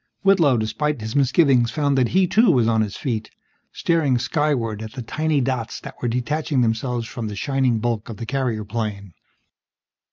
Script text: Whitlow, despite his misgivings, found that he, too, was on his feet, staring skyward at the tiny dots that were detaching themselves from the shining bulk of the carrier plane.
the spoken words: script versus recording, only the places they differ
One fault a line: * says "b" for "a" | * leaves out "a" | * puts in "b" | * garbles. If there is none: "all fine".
all fine